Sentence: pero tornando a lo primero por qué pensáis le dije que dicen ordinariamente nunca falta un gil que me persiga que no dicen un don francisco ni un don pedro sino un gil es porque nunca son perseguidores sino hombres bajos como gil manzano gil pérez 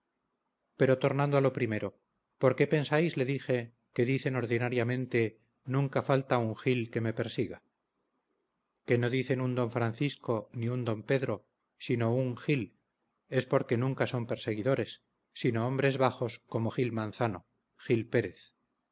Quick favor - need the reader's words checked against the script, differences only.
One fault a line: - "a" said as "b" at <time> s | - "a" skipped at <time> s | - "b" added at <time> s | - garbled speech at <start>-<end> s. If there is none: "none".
none